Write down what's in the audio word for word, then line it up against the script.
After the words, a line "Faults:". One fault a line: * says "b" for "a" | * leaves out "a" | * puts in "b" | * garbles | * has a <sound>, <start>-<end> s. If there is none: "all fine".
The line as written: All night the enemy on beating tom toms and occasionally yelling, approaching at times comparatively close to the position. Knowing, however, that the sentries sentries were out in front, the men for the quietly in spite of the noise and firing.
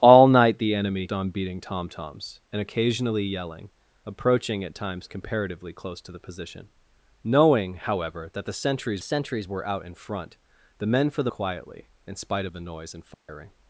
All night the enemy on beating tom toms and occasionally yelling, approaching at times comparatively close to the position. Knowing, however, that the sentries sentries were out in front, the men for the quietly in spite of the noise and firing.
Faults:
* has a dropout, 13.1-13.3 s